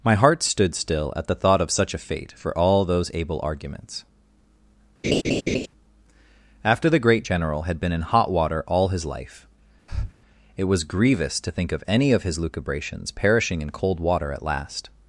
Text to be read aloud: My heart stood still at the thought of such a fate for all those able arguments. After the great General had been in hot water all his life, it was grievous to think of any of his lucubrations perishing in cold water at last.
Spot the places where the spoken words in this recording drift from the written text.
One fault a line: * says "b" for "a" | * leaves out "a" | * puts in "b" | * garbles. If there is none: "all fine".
all fine